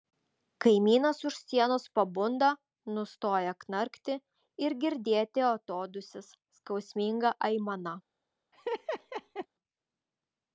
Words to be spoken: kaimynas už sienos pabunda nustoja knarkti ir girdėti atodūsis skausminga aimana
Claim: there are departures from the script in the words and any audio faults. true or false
true